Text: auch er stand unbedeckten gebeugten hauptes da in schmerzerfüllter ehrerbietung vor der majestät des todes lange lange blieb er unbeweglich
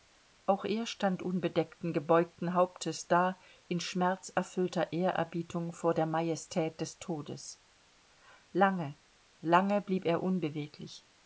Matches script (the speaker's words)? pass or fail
pass